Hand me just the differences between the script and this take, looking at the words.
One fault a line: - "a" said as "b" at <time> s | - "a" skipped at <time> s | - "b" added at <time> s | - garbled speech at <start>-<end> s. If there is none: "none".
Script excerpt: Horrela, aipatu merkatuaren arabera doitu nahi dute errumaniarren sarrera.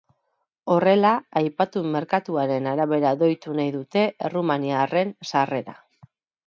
none